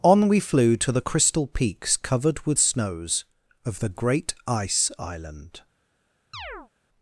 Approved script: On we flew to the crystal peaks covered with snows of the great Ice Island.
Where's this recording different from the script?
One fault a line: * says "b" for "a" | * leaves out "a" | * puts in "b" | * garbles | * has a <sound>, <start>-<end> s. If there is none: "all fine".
* has a chirp, 6.3-6.7 s